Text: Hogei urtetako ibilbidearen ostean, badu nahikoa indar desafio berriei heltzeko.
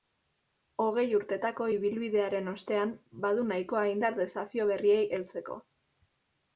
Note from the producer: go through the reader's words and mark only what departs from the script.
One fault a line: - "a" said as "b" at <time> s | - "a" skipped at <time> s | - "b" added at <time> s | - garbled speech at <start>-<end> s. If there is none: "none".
none